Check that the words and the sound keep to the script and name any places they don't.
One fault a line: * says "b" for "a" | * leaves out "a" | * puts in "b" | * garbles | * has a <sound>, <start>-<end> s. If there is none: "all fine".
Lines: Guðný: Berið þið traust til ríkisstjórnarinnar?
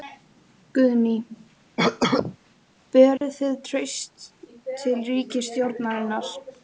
* has a cough, 1.8-2.4 s
* has a dropout, 3.2-3.2 s